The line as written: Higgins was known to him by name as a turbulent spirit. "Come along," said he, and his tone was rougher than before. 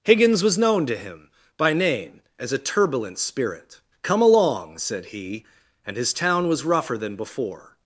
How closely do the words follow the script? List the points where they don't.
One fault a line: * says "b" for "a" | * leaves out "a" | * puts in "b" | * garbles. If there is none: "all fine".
* says "town" for "tone"